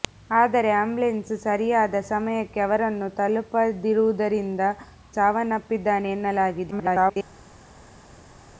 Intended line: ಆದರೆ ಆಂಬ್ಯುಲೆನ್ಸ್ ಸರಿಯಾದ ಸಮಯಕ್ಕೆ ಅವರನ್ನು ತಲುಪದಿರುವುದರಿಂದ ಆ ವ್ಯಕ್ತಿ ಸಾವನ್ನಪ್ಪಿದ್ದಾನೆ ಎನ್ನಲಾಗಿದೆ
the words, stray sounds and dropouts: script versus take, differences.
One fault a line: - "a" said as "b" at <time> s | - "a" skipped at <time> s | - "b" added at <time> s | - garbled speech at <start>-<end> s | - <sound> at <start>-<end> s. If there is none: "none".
- "ಆ ವ್ಯಕ್ತಿ" skipped at 4.6 s
- garbled speech at 6.7-7.2 s